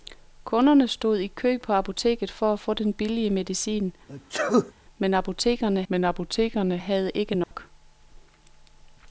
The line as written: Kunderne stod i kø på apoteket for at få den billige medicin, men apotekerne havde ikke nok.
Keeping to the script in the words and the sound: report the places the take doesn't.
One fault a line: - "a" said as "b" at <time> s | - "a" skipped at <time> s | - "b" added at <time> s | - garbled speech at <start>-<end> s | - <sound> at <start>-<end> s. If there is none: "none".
- sneeze at 4.1-4.7 s
- "men apotekerne" added at 5.9 s
- dropout at 7.4-7.5 s